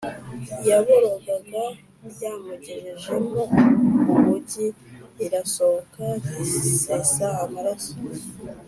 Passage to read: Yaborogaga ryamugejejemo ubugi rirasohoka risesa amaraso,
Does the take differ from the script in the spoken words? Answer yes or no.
no